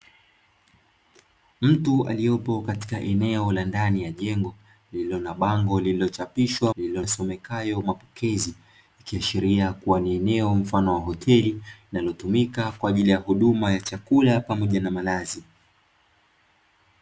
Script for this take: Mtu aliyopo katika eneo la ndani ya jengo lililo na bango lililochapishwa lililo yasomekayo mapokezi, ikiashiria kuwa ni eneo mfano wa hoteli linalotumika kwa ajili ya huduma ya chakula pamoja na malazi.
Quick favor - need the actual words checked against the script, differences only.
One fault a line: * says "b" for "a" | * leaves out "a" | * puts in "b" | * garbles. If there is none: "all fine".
all fine